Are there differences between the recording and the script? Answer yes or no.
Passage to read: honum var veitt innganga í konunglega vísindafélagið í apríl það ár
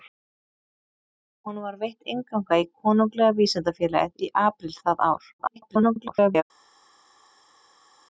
yes